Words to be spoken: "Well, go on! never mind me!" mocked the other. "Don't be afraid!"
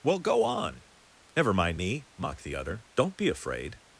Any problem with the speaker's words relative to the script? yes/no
no